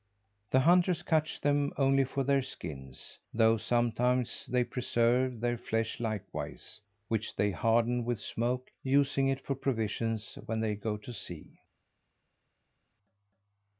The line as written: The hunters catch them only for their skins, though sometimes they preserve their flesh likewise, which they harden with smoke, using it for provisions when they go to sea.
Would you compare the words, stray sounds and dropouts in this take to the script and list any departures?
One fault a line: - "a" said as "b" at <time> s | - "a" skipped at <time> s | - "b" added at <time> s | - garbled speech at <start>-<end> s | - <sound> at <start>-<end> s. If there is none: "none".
none